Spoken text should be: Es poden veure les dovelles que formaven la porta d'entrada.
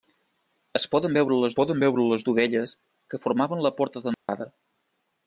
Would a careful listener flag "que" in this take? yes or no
no